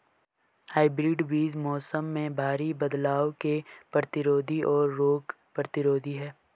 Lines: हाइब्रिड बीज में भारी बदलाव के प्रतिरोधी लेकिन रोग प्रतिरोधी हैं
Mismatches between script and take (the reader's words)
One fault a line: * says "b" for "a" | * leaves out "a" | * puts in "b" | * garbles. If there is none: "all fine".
* puts in "मौसम"
* says "और" for "लेकिन"